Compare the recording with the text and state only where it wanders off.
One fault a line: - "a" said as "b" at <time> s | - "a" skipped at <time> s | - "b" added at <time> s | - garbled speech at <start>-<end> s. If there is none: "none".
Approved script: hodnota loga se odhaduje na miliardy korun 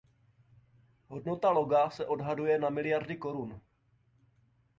none